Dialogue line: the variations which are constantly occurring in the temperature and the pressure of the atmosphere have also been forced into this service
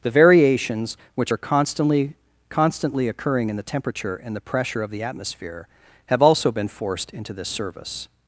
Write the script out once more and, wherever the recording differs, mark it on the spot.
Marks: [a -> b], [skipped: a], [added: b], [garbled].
the variations which are constantly [added: constantly] occurring in the temperature and the pressure of the atmosphere have also been forced into this service